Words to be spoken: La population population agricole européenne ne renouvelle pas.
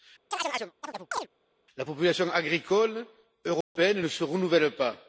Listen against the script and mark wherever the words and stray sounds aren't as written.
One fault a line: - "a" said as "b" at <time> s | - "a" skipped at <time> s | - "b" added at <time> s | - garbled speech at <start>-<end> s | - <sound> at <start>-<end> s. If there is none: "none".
- chirp at 0.3-1.3 s
- "population" skipped at 2.3 s
- dropout at 3.6-3.8 s
- "se" added at 4.1 s